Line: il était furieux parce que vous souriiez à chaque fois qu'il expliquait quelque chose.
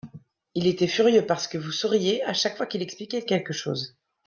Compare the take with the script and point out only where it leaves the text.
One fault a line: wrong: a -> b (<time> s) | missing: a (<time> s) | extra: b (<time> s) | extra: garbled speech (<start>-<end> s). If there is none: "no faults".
no faults